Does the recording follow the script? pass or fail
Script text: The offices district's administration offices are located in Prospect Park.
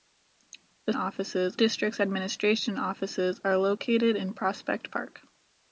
pass